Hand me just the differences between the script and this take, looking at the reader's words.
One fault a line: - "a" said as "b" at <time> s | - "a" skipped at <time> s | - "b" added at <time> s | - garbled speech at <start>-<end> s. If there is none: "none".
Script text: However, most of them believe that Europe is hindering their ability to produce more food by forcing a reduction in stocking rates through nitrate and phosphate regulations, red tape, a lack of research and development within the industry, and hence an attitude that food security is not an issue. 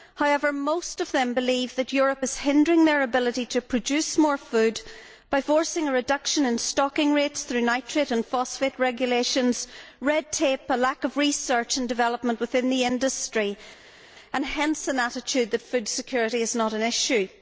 none